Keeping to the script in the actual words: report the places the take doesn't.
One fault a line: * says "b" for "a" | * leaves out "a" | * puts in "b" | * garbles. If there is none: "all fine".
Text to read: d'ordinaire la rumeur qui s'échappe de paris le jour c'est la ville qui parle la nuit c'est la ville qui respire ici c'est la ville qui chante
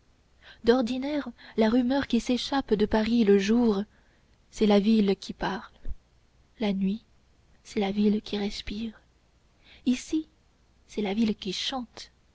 all fine